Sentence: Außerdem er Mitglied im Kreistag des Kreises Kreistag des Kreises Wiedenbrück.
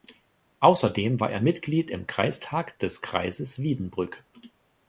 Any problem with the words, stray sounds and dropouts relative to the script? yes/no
yes